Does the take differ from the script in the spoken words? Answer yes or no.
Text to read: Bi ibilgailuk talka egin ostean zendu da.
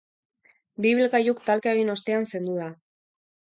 no